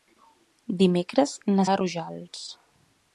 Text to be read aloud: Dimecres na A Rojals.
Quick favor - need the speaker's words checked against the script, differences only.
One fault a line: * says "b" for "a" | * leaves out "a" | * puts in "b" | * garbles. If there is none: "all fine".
all fine